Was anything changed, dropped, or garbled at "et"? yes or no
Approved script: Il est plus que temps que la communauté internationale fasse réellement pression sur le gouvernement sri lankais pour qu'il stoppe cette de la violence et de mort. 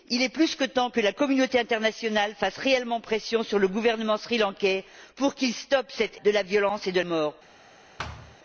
no